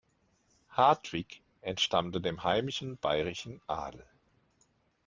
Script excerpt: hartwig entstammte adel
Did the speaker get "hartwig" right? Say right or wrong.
right